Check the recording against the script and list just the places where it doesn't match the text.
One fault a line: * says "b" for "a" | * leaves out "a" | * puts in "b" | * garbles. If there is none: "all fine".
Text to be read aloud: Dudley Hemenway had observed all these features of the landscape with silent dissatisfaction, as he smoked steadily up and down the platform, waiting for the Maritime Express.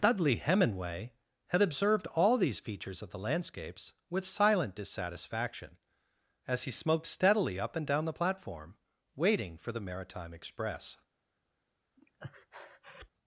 * says "landscapes" for "landscape"